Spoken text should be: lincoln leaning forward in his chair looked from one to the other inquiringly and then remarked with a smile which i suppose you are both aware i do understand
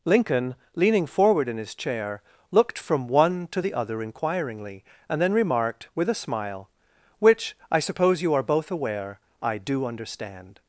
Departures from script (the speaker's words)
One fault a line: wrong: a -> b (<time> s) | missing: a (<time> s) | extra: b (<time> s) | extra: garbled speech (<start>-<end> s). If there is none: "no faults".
no faults